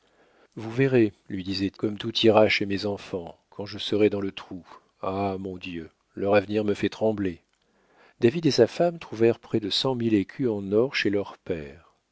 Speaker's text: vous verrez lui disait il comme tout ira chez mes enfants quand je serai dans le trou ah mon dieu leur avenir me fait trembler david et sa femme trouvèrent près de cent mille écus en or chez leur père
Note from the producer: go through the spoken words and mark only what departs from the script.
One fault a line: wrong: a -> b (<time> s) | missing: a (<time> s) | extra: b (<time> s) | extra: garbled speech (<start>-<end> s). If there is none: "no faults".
missing: il (1.7 s)